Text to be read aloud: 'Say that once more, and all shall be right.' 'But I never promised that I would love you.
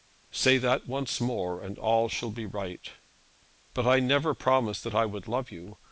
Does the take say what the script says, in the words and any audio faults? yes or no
yes